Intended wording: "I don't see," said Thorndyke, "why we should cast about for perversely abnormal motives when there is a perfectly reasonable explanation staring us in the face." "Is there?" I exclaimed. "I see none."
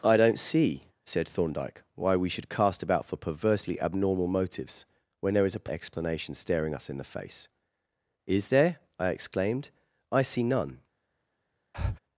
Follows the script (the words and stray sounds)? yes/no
no